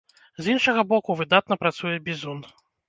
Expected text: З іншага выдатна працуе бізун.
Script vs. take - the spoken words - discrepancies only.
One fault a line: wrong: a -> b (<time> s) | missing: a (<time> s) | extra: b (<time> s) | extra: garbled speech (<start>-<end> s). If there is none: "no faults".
extra: боку (0.9 s)